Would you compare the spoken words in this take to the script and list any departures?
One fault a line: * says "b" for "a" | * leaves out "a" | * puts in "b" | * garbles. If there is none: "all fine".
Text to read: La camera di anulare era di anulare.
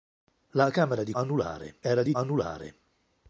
all fine